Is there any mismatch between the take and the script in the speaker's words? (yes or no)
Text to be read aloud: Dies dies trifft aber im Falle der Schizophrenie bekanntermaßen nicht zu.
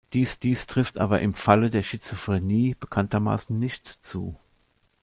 no